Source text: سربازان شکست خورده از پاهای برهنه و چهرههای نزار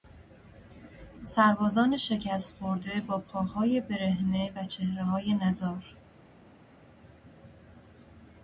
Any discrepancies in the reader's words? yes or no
yes